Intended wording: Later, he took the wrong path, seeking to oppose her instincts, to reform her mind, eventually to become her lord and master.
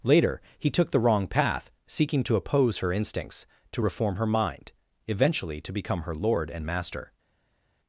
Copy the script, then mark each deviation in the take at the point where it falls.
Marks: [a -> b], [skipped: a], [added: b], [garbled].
Later, he took the wrong path, seeking to oppose her instincts, to reform her mind, eventually to become her lord and master.